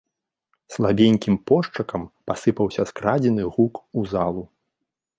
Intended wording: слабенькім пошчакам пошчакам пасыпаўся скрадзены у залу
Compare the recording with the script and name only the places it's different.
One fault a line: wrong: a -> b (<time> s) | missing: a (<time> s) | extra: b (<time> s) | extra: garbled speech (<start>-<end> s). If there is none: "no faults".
missing: пошчакам (2.0 s)
extra: гук (3.6 s)